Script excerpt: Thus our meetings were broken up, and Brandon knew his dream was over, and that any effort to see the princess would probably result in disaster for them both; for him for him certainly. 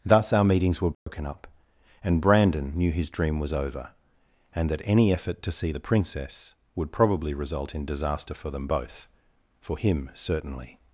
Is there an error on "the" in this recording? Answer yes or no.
no